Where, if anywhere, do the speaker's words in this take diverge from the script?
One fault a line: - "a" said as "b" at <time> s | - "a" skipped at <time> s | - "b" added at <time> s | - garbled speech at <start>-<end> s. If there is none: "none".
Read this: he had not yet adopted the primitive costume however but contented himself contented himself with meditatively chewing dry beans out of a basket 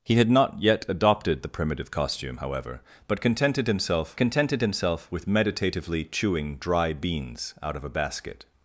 none